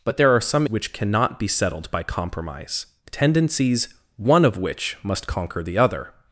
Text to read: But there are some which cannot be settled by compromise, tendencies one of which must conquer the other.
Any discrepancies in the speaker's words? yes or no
no